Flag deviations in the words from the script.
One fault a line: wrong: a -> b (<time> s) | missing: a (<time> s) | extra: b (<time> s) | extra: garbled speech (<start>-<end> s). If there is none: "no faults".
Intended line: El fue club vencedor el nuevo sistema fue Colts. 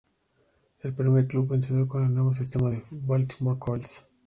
wrong: fue -> primer (0.9 s)
extra: con (1.9 s)
extra: Baltimore (3.1 s)